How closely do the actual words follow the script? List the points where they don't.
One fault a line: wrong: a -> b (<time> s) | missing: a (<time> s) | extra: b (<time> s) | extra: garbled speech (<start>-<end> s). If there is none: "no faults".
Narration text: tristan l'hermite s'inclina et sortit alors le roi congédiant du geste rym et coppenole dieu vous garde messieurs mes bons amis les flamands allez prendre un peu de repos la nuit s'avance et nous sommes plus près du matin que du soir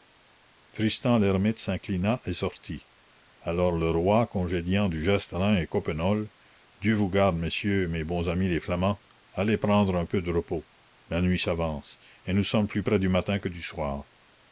no faults